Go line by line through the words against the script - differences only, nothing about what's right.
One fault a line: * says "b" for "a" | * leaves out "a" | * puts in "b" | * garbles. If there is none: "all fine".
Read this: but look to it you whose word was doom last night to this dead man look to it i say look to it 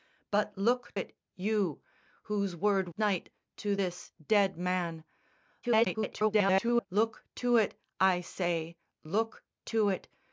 * leaves out "to"
* leaves out "was doom last"
* garbles